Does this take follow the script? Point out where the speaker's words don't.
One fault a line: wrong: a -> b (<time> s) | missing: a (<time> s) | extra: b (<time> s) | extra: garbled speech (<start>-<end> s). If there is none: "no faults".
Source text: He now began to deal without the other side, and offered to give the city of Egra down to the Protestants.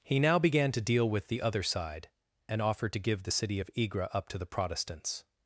wrong: without -> with (1.1 s)
wrong: down -> up (4.1 s)